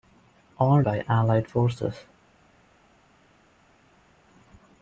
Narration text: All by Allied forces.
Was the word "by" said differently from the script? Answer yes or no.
no